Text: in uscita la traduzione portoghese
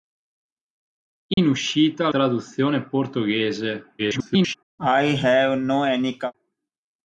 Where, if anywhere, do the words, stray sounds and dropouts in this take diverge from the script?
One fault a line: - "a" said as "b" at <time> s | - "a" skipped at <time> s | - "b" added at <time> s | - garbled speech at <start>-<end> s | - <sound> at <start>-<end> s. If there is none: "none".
- dropout at 1.3-1.4 s
- "la" skipped at 2.1 s
- garbled speech at 4.0-4.5 s
- cough at 4.8-6.3 s